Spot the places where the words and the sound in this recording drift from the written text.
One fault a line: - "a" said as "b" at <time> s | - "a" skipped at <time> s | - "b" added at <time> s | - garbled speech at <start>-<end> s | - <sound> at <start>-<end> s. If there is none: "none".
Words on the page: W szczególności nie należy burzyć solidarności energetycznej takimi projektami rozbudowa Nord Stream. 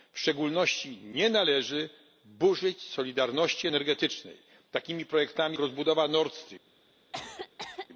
- cough at 7.1-7.9 s